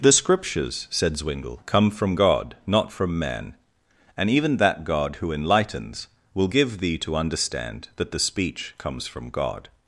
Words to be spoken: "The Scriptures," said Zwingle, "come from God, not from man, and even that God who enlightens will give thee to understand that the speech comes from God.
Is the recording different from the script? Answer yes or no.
no